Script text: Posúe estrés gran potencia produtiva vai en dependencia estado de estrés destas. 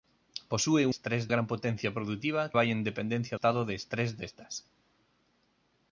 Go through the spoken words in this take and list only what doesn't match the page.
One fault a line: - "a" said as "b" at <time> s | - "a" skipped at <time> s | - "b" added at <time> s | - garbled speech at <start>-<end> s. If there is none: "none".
none